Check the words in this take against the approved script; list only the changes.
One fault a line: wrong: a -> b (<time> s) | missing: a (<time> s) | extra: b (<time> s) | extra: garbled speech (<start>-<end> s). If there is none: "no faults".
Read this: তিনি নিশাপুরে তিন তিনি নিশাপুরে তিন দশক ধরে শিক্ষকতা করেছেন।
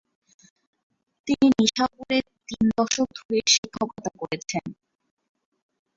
missing: তিনি নিশাপুরে তিন (2.6 s)